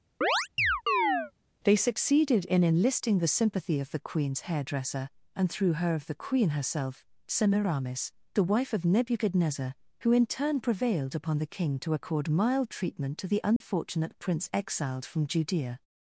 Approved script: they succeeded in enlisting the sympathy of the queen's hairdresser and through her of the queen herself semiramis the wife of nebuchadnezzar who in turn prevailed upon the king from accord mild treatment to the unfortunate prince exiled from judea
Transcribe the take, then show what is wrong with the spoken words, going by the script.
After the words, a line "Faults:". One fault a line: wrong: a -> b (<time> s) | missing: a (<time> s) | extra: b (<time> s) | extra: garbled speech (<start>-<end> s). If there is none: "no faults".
they succeeded in enlisting the sympathy of the queen's hairdresser and through her of the queen herself semiramis the wife of nebuchadnezzar who in turn prevailed upon the king to accord mild treatment to the unfortunate prince exiled from judea
Faults:
wrong: from -> to (11.8 s)